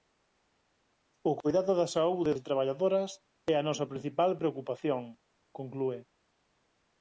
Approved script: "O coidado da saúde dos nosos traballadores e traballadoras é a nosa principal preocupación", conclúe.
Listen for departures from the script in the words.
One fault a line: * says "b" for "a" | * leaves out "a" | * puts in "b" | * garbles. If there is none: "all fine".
* leaves out "dos nosos traballadores"